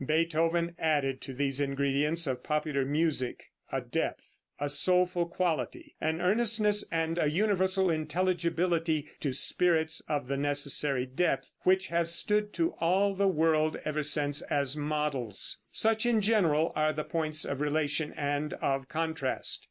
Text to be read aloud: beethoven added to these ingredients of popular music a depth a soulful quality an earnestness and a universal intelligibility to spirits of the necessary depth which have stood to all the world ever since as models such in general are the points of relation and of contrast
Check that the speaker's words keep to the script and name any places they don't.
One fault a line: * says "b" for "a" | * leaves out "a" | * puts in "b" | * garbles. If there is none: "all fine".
all fine